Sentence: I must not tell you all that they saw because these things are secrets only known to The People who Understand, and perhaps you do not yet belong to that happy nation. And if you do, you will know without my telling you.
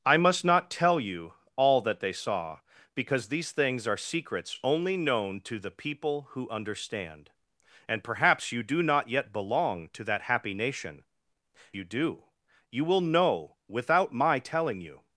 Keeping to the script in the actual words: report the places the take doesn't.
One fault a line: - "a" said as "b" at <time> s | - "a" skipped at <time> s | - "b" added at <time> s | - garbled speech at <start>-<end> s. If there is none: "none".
- "And if" skipped at 11.0 s